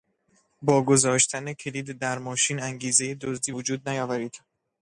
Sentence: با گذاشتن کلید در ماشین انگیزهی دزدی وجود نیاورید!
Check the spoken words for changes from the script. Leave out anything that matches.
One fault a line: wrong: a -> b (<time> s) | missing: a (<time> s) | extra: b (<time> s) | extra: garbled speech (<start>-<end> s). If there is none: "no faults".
no faults